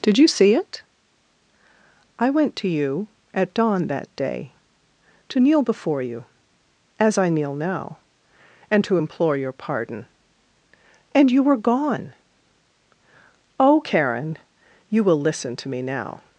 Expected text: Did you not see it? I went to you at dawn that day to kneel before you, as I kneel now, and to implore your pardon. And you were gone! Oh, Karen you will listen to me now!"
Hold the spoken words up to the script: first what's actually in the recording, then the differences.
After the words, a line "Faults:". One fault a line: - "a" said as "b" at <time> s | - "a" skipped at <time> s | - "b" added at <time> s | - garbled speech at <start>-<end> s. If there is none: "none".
Did you see it? I went to you at dawn that day to kneel before you, as I kneel now, and to implore your pardon. And you were gone! Oh, Karen you will listen to me now!"
Faults:
- "not" skipped at 0.3 s